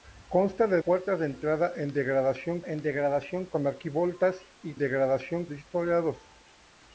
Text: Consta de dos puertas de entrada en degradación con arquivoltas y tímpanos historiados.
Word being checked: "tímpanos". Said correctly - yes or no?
no